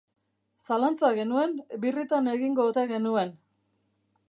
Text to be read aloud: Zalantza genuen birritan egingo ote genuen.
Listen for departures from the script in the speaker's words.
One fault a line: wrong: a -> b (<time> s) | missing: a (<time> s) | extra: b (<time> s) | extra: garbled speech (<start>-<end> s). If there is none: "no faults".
no faults